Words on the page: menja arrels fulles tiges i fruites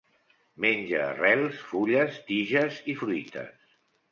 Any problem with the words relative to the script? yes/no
no